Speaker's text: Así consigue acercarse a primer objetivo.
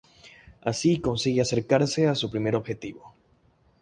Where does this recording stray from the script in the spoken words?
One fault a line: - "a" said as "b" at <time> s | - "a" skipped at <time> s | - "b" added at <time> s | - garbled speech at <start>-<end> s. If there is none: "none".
- "su" added at 2.1 s